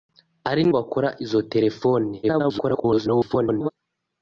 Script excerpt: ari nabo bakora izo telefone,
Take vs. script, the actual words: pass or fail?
fail